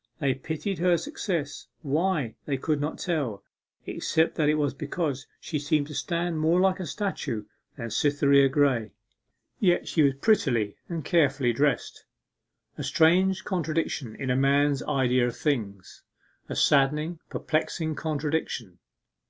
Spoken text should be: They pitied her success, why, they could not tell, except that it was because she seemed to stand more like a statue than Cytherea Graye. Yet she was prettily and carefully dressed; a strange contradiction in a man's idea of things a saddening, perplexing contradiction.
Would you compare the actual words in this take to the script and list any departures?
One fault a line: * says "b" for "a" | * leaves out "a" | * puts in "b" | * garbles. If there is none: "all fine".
all fine